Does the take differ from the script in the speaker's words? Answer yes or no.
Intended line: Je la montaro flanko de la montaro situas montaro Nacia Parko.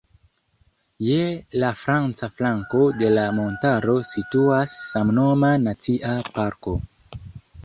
yes